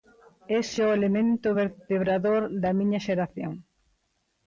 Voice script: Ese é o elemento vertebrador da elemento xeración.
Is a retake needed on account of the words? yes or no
yes